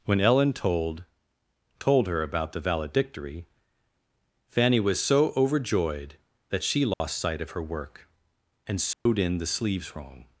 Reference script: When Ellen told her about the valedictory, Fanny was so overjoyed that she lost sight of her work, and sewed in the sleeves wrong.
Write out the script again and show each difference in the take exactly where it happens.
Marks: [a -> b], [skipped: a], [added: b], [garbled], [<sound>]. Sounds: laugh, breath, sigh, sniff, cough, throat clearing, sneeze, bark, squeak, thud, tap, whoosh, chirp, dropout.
When Ellen told [added: told] her about the valedictory, Fanny was so overjoyed that she lost [dropout] sight of her work, and sewed [dropout] in the sleeves wrong.